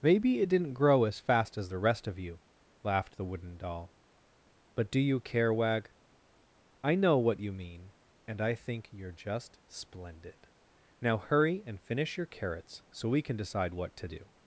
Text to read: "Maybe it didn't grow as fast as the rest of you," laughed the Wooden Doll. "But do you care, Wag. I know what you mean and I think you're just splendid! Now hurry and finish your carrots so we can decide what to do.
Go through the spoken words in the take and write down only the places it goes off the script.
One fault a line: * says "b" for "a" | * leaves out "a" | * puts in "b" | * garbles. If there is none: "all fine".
all fine